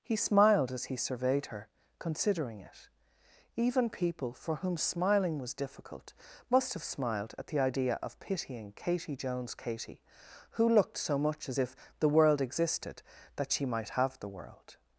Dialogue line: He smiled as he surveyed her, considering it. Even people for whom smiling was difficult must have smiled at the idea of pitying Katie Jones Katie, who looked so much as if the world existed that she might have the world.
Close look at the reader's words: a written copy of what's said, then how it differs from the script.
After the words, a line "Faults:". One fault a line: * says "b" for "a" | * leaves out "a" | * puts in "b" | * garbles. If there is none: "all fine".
He smiled as he surveyed her, considering it. Even people for whom smiling was difficult must have smiled at the idea of pitying Katie Jones Katie, who looked so much as if the world existed that she might have the world.
Faults:
all fine